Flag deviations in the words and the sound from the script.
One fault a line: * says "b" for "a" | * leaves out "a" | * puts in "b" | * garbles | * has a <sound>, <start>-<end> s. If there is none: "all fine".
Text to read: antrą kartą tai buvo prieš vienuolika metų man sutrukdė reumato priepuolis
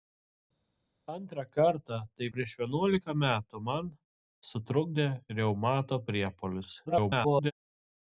* leaves out "buvo"
* garbles